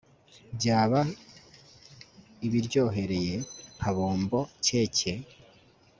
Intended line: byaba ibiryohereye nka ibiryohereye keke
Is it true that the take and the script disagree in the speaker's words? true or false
true